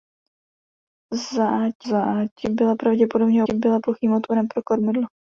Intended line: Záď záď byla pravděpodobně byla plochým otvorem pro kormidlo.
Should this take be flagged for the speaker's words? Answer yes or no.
no